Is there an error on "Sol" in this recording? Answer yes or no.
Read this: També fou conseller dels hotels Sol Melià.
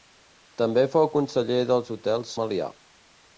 yes